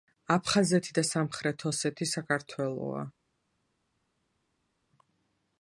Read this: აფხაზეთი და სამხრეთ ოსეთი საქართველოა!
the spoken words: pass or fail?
pass